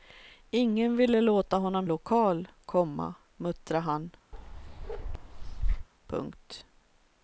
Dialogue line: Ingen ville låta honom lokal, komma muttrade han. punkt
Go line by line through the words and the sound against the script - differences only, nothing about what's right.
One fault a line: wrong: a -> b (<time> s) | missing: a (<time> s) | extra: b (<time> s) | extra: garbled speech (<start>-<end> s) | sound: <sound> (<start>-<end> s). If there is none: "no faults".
sound: bark (4.3-5.9 s)